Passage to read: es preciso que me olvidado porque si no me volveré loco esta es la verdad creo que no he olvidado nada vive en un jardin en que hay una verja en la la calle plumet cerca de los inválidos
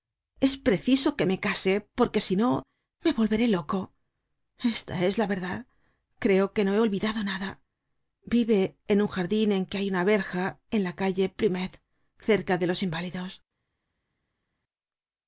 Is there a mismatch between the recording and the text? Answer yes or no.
yes